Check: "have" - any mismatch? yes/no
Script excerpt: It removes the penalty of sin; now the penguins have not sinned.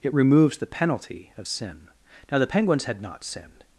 yes